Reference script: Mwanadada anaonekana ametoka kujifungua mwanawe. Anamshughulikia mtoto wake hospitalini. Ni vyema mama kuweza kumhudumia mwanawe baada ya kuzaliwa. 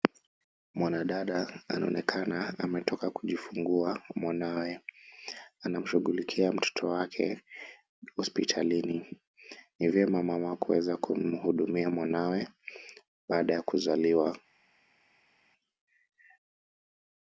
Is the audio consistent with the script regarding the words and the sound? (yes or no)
yes